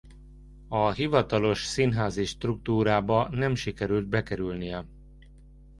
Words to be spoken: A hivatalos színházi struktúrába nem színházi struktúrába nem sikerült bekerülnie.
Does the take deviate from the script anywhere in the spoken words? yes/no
yes